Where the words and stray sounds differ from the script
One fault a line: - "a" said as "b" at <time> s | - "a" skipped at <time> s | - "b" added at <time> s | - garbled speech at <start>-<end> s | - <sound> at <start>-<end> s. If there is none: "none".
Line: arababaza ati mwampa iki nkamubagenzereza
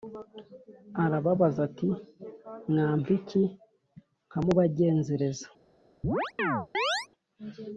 - chirp at 6.0-7.1 s